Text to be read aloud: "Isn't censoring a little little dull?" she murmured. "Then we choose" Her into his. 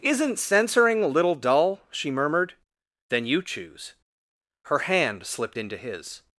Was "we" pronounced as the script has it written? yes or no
no